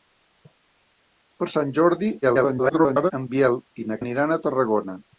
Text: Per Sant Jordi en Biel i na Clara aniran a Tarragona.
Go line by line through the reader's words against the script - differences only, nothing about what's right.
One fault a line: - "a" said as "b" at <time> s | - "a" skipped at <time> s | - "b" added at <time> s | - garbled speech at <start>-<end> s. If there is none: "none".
- garbled speech at 2.2-3.1 s
- "Clara" skipped at 4.0 s